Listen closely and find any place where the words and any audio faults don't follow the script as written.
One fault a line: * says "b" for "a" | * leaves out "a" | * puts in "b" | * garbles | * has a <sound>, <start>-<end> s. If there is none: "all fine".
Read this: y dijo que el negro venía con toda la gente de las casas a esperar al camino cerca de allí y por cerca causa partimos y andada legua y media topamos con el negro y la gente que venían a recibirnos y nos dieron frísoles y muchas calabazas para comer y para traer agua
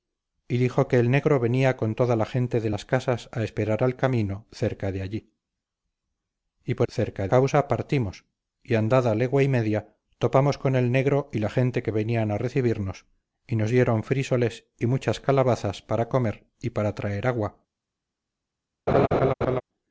* has a laugh, 18.9-19.6 s